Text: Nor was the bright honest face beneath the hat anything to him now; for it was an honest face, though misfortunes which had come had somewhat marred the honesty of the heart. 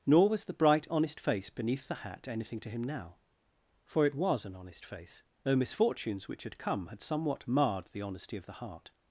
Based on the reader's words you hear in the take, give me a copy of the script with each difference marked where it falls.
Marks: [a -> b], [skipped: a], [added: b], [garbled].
Nor was the bright honest face beneath the hat anything to him now; for it was an honest face, though misfortunes which had come had somewhat marred the honesty of the heart.